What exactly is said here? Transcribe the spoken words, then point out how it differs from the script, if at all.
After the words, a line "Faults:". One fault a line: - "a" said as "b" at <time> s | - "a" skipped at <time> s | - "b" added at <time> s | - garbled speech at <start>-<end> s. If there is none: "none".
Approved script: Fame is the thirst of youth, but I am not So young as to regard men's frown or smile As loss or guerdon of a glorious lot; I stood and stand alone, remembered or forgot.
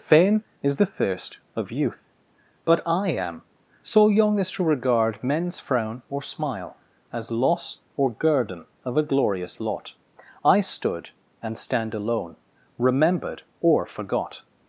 Fame is the thirst of youth, but I am So young as to regard men's frown or smile As loss or guerdon of a glorious lot; I stood and stand alone, remembered or forgot.
Faults:
- "not" skipped at 3.4 s